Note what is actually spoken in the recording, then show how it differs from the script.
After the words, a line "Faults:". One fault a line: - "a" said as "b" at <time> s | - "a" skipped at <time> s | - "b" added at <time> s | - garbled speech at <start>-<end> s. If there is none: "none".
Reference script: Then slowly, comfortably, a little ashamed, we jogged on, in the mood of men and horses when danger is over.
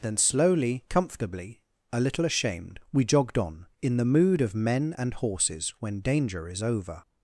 Then slowly, comfortably, a little ashamed, we jogged on, in the mood of men and horses when danger is over.
Faults:
none